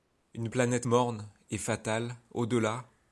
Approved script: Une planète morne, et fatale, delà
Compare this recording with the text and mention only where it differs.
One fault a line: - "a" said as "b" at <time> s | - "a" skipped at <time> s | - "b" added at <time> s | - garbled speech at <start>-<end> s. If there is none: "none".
- "au" added at 2.3 s